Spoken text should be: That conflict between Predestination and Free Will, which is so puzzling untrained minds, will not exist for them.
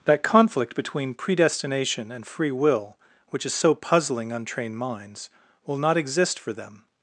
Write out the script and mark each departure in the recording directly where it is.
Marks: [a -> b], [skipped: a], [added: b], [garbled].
That conflict between Predestination and Free Will, which is so puzzling untrained minds, will not exist for them.